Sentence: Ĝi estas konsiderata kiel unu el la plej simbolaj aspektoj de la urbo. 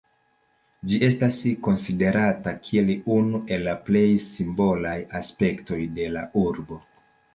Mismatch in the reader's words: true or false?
false